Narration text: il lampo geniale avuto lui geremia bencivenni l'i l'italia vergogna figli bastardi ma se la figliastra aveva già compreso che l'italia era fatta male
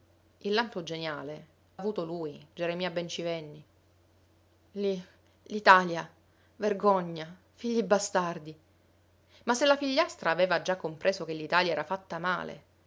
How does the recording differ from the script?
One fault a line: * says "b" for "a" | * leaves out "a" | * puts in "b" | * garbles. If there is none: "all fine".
all fine